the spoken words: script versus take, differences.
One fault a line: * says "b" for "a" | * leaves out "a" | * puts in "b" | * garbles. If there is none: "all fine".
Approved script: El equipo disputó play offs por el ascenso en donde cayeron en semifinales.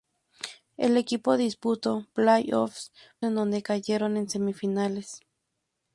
* leaves out "por el ascenso"